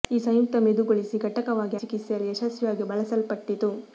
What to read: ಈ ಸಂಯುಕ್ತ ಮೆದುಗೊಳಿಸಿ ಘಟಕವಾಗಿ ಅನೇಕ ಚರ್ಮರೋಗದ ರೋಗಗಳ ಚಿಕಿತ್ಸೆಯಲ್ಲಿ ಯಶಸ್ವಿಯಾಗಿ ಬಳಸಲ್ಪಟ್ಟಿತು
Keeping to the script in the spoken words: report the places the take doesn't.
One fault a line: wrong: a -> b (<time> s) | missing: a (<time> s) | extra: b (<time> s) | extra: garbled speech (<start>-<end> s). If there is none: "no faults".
missing: ಅನೇಕ ಚರ್ಮರೋಗದ ರೋಗಗಳ (1.8 s)